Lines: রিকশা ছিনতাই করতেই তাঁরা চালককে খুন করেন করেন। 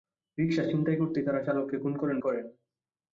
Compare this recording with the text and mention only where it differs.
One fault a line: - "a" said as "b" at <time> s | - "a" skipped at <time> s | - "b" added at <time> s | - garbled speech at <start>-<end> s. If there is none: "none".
none